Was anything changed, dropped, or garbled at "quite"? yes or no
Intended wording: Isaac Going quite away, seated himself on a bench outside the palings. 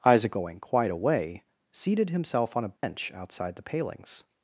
no